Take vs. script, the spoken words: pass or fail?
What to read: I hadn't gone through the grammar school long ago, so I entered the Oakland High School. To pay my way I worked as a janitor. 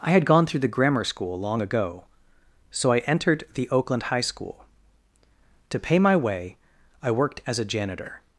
fail